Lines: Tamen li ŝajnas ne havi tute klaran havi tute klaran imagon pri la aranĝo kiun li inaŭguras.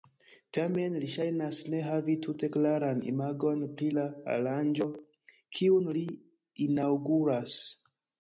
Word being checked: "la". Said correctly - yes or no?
yes